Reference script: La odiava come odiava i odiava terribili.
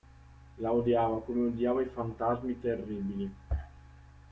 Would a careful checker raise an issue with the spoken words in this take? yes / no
yes